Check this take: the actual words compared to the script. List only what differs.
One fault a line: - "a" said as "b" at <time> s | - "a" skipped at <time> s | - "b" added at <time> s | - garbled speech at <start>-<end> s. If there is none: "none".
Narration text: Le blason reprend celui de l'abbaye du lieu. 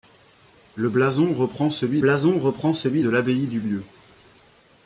- "blason reprend celui" added at 2.0 s